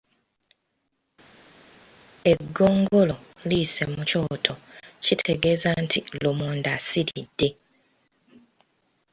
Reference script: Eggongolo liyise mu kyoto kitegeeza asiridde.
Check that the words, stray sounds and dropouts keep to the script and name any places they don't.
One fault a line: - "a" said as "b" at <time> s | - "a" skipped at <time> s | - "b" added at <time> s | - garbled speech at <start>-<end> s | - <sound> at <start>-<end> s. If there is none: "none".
- "nti lumonde" added at 5.8 s